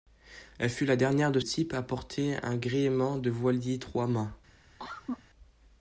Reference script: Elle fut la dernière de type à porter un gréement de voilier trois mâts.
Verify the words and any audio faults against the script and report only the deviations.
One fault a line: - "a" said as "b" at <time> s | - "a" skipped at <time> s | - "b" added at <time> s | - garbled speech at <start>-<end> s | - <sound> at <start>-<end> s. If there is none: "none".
- cough at 4.8-5.2 s